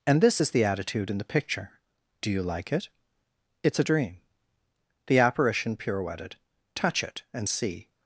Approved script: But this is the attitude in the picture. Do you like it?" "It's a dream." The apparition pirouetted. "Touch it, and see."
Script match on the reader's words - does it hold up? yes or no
no